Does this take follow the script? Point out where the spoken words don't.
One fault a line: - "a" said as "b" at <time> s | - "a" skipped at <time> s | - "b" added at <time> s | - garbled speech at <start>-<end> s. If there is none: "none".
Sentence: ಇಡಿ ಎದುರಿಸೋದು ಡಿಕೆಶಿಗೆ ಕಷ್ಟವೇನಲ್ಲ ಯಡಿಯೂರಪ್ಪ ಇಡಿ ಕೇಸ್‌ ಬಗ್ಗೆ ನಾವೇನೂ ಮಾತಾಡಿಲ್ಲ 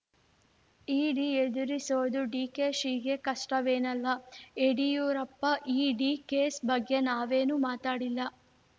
none